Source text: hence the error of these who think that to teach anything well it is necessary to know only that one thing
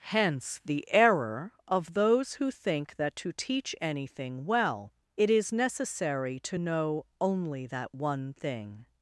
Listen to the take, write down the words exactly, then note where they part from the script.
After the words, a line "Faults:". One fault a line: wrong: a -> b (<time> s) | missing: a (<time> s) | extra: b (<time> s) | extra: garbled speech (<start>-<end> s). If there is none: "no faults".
hence the error of those who think that to teach anything well it is necessary to know only that one thing
Faults:
wrong: these -> those (1.9 s)